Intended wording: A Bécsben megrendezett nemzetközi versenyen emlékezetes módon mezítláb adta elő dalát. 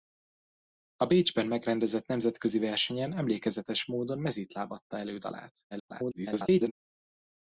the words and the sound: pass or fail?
fail